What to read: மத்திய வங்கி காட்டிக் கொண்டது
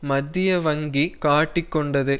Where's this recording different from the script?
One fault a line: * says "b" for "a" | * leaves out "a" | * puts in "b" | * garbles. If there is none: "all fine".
all fine